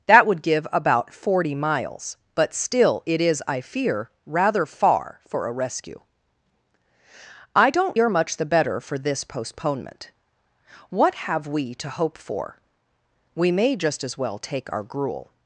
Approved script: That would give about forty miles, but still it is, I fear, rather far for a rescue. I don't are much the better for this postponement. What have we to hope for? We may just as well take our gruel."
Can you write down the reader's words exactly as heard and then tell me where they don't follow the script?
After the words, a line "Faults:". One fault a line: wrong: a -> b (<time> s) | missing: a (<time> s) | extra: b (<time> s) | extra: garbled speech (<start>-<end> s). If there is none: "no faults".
That would give about forty miles, but still it is, I fear, rather far for a rescue. I don't are much the better for this postponement. What have we to hope for? We may just as well take our gruel."
Faults:
no faults